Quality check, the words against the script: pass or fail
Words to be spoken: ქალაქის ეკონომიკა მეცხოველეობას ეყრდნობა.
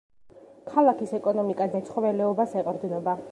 pass